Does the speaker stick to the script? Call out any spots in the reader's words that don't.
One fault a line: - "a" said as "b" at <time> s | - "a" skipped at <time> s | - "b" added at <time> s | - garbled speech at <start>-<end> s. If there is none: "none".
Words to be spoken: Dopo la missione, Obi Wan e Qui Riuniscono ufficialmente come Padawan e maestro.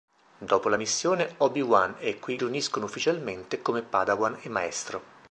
none